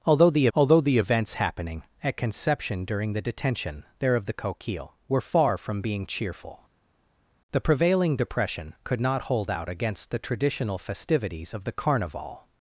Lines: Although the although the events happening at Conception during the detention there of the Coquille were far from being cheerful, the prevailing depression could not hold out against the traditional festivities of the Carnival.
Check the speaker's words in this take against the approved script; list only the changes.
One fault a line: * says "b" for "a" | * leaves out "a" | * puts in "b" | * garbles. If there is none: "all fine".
all fine